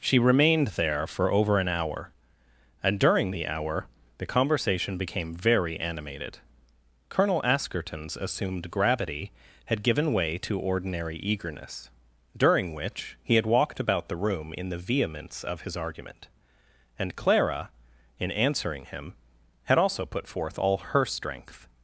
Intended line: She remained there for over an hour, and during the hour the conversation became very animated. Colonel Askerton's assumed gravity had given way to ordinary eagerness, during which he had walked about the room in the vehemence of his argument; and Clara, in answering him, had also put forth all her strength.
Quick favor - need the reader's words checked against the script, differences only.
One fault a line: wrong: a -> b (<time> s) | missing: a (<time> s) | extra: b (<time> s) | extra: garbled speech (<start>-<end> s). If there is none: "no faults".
no faults